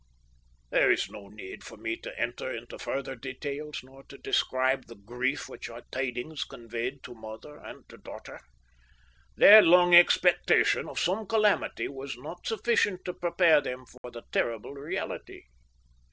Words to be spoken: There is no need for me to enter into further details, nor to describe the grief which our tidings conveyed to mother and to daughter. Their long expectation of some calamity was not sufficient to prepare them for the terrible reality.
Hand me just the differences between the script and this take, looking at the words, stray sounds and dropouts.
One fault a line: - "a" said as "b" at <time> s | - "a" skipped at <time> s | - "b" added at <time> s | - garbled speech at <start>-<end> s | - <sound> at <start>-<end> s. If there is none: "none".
- dropout at 14.0-14.0 s